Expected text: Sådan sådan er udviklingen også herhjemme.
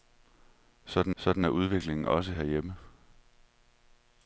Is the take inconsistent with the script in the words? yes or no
no